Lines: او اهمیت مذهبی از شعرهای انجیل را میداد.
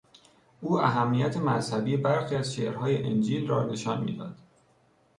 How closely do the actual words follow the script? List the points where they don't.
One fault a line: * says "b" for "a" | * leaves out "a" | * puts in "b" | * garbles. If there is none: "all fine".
* puts in "برخی"
* puts in "نشان"